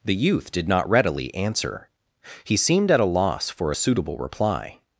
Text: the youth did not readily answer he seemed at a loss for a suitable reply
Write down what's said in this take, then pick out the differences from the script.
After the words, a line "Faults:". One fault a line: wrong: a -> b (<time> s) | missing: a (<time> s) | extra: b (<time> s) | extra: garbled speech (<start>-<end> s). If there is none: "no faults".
the youth did not readily answer he seemed at a loss for a suitable reply
Faults:
no faults